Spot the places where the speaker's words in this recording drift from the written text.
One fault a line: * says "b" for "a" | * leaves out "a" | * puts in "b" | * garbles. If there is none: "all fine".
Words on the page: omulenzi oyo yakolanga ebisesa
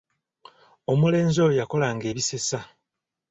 all fine